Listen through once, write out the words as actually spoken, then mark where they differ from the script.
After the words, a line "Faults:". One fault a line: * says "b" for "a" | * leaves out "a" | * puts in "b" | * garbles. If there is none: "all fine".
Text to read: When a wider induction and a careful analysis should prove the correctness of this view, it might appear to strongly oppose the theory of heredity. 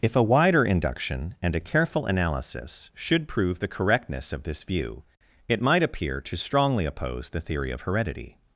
If a wider induction and a careful analysis should prove the correctness of this view, it might appear to strongly oppose the theory of heredity.
Faults:
* says "If" for "When"